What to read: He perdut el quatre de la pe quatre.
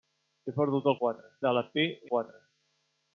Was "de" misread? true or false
false